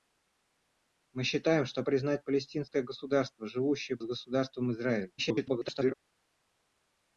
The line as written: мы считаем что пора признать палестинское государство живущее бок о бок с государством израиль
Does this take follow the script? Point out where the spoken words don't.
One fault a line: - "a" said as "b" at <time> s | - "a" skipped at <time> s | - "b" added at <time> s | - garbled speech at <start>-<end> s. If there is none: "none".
- "пора" skipped at 1.8 s
- "бок о бок" skipped at 4.0 s
- garbled speech at 5.2-5.9 s